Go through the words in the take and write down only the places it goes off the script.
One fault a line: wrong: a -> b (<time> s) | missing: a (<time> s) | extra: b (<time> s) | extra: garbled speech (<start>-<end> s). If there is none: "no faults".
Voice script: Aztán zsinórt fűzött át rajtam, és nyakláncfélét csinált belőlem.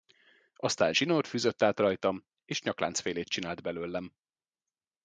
no faults